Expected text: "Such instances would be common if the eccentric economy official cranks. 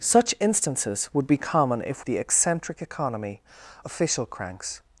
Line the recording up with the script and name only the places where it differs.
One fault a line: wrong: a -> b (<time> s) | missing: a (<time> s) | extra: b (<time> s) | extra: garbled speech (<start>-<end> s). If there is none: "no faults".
no faults